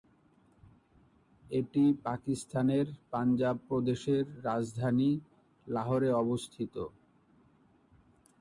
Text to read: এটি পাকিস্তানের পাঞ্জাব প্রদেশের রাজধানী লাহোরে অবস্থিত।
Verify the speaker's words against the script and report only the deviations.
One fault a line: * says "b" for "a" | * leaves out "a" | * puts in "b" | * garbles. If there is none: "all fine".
all fine